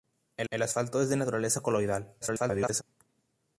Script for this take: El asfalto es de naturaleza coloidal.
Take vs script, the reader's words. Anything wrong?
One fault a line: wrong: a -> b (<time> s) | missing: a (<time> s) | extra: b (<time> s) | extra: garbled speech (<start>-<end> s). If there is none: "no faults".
extra: el (0.5 s)
extra: garbled speech (2.2-2.8 s)